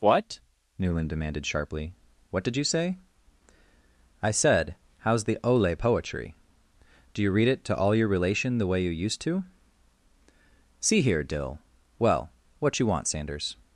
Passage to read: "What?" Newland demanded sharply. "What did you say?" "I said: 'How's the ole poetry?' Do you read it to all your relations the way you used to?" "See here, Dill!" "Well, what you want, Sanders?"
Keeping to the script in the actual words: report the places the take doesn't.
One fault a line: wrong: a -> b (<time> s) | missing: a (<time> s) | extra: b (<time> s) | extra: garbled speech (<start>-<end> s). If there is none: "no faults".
wrong: relations -> relation (8.1 s)